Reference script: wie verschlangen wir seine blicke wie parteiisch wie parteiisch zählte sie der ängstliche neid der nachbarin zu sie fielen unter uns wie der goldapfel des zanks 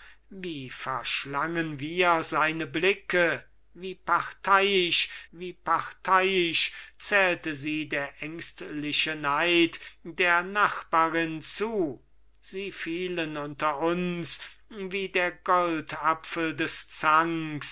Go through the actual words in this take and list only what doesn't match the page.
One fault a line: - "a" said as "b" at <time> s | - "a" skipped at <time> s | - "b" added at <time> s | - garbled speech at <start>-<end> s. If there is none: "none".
none